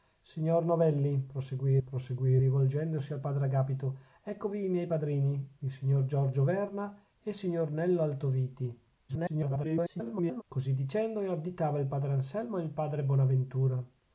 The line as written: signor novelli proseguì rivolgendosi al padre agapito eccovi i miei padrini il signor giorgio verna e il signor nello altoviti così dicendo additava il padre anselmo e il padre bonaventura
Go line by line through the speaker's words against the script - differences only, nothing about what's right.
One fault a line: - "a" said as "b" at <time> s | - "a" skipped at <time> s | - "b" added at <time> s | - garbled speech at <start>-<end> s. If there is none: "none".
- "proseguì" added at 1.8 s
- garbled speech at 9.1-10.4 s